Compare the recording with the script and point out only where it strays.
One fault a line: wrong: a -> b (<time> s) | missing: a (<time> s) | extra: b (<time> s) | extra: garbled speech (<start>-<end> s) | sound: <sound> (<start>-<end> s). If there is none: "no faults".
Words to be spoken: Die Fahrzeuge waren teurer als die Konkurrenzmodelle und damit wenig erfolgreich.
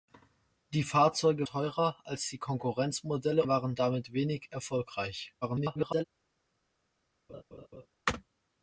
missing: waren (1.5 s)
wrong: und -> waren (3.5 s)
extra: garbled speech (5.4-6.0 s)
sound: laugh (7.3-7.9 s)